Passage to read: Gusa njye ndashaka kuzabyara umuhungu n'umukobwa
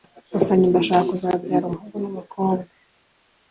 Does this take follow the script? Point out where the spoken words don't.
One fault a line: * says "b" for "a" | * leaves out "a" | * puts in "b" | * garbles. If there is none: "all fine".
all fine